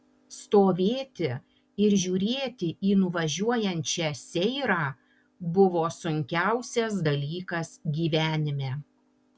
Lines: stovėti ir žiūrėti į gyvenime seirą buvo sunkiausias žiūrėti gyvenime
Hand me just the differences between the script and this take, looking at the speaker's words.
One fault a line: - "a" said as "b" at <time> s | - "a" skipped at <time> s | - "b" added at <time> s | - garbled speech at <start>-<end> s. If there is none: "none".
- "gyvenime" said as "nuvažiuojančią" at 3.0 s
- "žiūrėti" said as "dalykas" at 7.1 s